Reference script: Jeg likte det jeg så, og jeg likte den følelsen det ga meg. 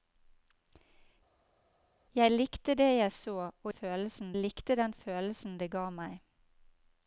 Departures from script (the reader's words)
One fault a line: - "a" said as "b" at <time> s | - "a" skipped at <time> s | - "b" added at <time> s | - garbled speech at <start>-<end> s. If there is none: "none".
- "jeg" said as "følelsen" at 3.7 s